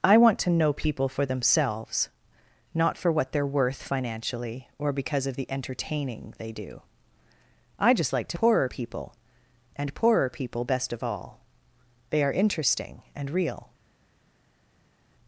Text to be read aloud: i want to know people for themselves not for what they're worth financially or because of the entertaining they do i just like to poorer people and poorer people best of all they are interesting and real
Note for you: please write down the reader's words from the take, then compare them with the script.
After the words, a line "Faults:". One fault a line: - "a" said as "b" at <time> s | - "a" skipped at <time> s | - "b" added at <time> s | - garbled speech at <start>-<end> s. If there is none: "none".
i want to know people for themselves not for what they're worth financially or because of the entertaining they do i just like to poorer people and poorer people best of all they are interesting and real
Faults:
none